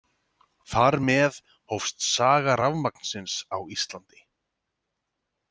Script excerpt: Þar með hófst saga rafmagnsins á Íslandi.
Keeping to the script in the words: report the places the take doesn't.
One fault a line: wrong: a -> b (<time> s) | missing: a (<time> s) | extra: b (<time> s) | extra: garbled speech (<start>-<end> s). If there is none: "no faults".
no faults